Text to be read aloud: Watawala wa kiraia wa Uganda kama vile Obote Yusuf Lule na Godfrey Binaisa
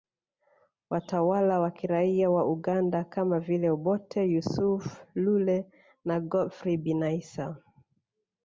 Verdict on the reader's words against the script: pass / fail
pass